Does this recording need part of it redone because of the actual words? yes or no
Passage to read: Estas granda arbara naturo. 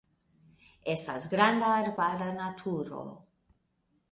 no